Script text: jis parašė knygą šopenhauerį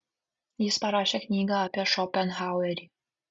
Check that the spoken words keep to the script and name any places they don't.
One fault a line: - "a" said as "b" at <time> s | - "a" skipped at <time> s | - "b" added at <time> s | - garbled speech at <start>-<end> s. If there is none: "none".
- "apie" added at 1.7 s